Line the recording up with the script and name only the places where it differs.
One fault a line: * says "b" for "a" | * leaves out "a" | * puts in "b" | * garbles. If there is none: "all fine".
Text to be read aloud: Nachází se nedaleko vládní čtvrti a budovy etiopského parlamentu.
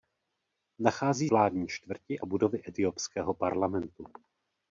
* leaves out "se nedaleko"
* leaves out "a"